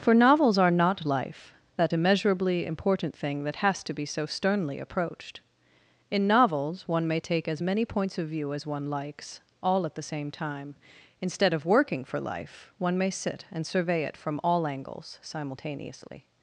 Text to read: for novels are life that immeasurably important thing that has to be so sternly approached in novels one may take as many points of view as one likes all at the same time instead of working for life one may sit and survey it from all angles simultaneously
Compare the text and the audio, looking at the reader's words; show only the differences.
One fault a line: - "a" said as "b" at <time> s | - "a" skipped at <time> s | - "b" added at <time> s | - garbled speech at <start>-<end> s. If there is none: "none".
- "not" added at 0.7 s